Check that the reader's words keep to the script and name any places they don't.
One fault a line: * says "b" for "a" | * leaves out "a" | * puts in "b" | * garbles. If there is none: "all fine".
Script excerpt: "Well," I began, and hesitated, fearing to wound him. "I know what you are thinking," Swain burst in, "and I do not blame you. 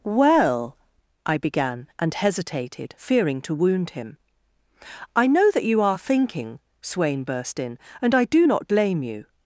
* says "that" for "what"